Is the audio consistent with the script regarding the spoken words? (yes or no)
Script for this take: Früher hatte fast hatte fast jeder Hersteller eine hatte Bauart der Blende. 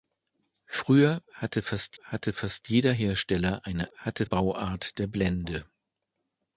yes